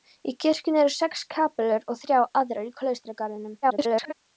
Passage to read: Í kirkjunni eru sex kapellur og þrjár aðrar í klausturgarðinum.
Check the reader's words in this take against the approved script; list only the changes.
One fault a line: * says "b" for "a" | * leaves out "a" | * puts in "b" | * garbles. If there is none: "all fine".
* garbles